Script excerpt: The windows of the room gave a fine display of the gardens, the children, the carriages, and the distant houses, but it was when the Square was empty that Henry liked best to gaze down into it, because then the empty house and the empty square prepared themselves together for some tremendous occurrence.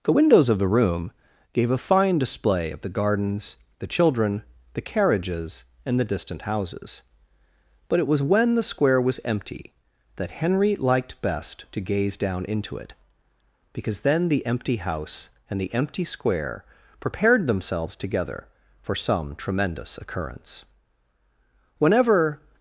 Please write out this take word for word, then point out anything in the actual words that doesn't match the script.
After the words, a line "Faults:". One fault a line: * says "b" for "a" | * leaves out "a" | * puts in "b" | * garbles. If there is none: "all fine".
The windows of the room gave a fine display of the gardens, the children, the carriages, and the distant houses, but it was when the Square was empty that Henry liked best to gaze down into it, because then the empty house and the empty square prepared themselves together for some tremendous occurrence. Whenever
Faults:
* puts in "Whenever"